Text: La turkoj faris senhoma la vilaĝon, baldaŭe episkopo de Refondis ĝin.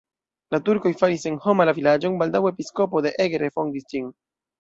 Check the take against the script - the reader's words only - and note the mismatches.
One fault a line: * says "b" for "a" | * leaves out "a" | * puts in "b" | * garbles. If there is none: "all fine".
* puts in "Eger"